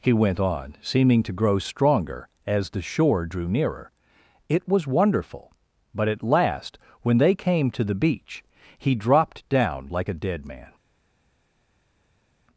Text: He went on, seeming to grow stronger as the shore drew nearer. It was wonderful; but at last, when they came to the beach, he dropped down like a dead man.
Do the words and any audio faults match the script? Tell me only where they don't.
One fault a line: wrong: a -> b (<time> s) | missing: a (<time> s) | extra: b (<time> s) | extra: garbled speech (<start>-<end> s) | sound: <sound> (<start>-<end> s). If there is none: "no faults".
no faults